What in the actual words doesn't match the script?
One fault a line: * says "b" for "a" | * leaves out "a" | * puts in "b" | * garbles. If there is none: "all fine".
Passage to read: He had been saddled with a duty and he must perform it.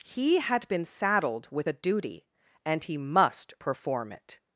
all fine